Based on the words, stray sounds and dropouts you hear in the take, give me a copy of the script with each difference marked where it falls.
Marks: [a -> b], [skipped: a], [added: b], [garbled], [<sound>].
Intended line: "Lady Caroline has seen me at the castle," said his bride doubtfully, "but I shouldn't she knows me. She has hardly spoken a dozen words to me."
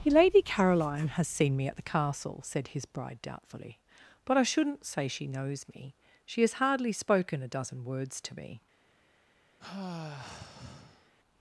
"Lady Caroline has seen me at the castle," said his bride doubtfully, "but I shouldn't [added: say] she knows me. She has hardly spoken a dozen words to me." [sigh]